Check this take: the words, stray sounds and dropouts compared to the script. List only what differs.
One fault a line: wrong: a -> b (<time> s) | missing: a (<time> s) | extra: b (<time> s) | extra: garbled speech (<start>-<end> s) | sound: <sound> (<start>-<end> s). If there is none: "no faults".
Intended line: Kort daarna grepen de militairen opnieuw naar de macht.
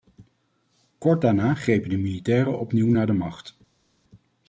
no faults